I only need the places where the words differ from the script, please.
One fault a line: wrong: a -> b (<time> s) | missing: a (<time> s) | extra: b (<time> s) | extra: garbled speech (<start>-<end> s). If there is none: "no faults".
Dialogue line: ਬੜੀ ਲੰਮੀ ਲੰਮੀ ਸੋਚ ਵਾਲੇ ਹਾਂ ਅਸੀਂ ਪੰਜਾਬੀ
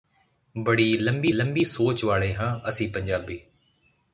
no faults